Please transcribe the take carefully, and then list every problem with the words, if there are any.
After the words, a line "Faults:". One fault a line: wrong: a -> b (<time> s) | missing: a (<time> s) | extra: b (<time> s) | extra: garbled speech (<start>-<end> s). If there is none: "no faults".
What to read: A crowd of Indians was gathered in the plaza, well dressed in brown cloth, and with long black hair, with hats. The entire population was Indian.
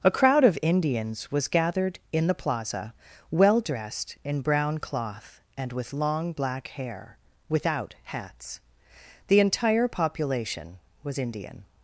A crowd of Indians was gathered in the plaza, well dressed in brown cloth, and with long black hair, without hats. The entire population was Indian.
Faults:
wrong: with -> without (7.5 s)